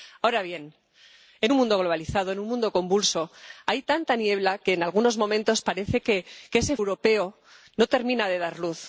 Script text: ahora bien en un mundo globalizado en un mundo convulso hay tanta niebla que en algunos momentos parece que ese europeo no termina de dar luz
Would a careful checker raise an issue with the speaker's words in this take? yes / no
no